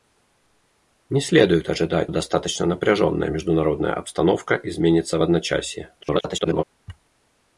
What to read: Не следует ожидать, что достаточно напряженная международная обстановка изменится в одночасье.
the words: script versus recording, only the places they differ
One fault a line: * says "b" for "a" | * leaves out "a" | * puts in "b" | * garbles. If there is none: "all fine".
* leaves out "что"
* garbles